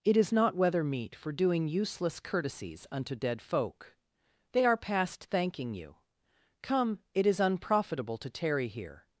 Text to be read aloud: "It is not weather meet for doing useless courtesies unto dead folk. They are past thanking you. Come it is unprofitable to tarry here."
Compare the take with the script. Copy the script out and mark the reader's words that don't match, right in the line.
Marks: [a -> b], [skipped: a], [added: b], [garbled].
"It is not weather meet for doing useless courtesies unto dead folk. They are past thanking you. Come it is unprofitable to tarry here."